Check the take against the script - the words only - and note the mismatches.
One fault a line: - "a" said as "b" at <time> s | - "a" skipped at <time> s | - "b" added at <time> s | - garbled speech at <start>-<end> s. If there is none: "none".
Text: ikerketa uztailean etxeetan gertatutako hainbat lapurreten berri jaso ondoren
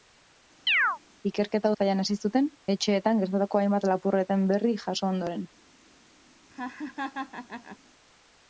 - "hasi zuten" added at 2.0 s